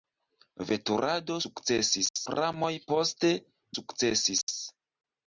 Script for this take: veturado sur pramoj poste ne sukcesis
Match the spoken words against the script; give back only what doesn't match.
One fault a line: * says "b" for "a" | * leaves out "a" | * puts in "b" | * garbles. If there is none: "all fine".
* says "sukcesis" for "sur"
* leaves out "ne"